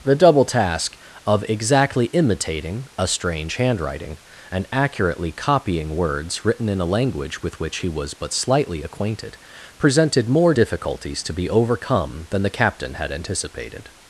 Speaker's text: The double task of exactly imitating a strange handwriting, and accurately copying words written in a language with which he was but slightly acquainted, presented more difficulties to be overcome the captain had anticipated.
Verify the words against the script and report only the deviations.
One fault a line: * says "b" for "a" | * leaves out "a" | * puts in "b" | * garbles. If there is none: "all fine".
* puts in "than"